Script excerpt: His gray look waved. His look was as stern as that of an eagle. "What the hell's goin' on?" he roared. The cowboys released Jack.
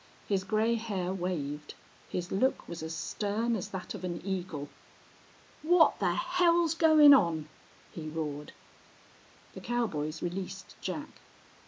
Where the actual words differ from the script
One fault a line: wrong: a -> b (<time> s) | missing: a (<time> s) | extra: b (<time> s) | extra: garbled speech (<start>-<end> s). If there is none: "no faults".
wrong: look -> hair (0.8 s)